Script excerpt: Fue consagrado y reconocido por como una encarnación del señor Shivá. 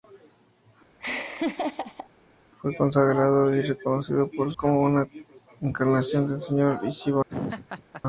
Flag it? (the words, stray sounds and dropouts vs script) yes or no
yes